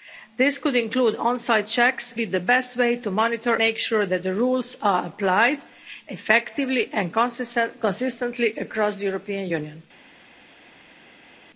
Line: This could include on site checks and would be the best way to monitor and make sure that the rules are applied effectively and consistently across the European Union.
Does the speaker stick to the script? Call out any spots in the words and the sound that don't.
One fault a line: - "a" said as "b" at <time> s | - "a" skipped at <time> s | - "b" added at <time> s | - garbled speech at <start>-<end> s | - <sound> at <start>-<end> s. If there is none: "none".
- "and would" skipped at 2.1 s
- "and" skipped at 3.5 s